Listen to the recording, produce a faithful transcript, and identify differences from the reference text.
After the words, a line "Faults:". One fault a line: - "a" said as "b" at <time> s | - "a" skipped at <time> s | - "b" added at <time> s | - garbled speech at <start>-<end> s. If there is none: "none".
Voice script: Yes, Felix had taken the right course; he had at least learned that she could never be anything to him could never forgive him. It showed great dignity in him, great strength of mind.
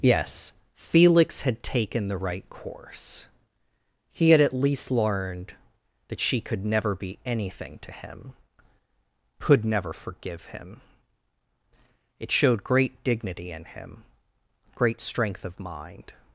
Yes, Felix had taken the right course; he had at least learned that she could never be anything to him could never forgive him. It showed great dignity in him, great strength of mind.
Faults:
none